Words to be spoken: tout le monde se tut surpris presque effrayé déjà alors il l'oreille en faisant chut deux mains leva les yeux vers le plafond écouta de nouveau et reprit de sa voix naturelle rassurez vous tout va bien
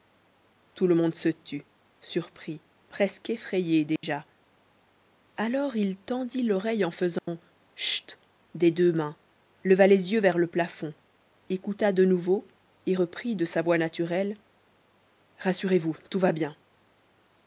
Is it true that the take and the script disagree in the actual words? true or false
true